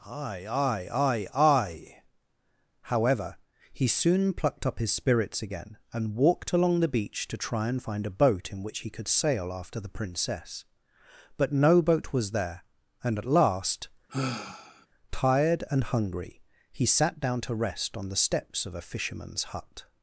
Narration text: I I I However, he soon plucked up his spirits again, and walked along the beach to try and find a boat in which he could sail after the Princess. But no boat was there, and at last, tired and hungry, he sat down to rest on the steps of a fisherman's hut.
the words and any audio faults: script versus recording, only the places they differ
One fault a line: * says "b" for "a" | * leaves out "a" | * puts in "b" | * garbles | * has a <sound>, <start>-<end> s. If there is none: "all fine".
* says "aye aye aye aye" for "I I I"
* has a sigh, 14.1-14.9 s